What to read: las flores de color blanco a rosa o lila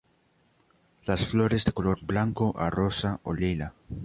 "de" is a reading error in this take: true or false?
false